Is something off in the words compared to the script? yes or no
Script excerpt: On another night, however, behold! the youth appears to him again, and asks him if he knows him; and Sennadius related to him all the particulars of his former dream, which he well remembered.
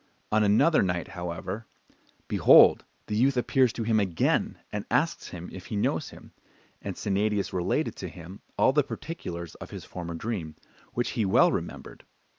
no